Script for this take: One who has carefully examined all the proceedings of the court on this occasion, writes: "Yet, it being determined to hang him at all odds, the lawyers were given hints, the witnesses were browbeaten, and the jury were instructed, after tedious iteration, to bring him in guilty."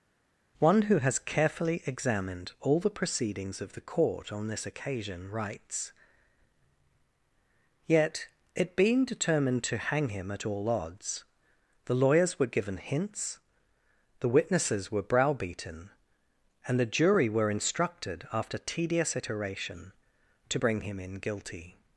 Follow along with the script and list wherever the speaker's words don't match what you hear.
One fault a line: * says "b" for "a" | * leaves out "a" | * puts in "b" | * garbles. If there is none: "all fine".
all fine